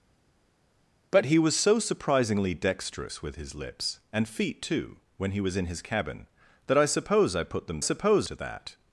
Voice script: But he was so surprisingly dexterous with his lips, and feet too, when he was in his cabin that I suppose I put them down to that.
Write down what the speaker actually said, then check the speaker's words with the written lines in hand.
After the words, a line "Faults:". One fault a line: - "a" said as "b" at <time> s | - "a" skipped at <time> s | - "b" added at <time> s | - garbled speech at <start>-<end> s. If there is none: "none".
But he was so surprisingly dexterous with his lips, and feet too, when he was in his cabin that I suppose I put them suppose to that.
Faults:
- "down" said as "suppose" at 7.8 s